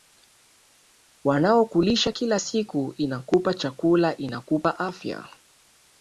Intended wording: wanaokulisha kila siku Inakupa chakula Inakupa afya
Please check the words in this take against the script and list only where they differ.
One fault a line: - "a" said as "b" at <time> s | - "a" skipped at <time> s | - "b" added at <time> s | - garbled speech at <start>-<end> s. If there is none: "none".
none